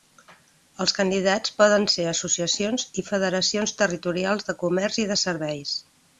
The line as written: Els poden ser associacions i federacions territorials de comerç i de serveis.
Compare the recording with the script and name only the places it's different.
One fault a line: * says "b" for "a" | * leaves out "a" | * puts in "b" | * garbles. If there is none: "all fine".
* puts in "candidats"